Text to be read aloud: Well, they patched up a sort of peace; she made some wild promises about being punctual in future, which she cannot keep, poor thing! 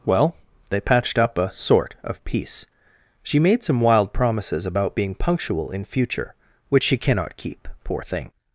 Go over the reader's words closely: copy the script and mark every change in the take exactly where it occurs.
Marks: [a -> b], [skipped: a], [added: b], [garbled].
Well, they patched up a sort of peace; she made some wild promises about being punctual in future, which she cannot keep, poor thing!